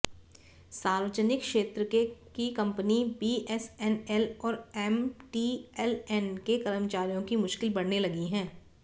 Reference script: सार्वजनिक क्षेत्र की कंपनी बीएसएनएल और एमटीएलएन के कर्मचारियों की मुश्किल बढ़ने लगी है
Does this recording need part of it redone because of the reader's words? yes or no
no